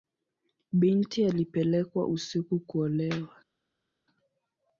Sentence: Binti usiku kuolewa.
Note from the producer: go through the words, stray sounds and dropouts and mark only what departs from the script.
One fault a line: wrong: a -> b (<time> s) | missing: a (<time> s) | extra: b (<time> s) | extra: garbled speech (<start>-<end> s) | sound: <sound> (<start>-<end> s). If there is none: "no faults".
extra: alipelekwa (1.2 s)